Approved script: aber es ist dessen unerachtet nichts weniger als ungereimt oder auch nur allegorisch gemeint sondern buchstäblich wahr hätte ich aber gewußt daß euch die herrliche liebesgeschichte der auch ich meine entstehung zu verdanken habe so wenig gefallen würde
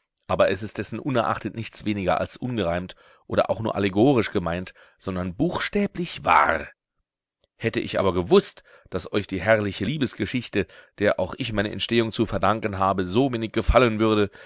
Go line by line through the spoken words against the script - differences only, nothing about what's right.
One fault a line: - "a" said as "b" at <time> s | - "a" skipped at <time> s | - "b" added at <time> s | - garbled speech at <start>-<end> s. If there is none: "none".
none